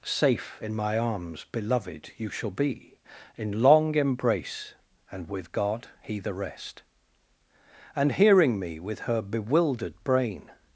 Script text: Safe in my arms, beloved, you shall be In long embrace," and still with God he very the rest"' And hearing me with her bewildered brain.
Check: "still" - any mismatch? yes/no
yes